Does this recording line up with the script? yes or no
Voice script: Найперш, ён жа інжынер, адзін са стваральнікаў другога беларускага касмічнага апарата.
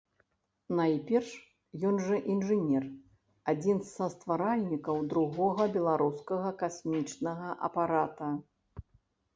yes